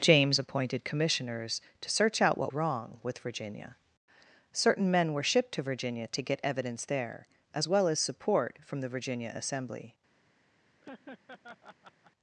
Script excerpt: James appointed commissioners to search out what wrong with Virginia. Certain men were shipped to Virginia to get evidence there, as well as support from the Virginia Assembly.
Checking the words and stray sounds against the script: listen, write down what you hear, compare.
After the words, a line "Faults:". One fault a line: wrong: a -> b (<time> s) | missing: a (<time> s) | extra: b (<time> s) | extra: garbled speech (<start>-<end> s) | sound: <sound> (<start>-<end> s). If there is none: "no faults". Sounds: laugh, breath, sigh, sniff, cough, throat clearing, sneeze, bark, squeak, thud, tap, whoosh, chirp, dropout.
James appointed commissioners to search out what wrong with Virginia. Certain men were shipped to Virginia to get evidence there, as well as support from the Virginia Assembly.
Faults:
sound: laugh (10.8-12.1 s)